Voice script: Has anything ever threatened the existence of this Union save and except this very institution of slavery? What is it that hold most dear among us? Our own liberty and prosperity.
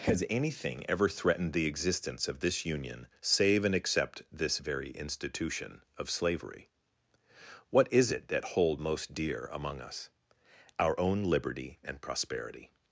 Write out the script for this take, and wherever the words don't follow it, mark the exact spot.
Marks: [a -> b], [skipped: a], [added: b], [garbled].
Has anything ever threatened the existence of this Union save and except this very institution of slavery? What is it that hold most dear among us? Our own liberty and prosperity.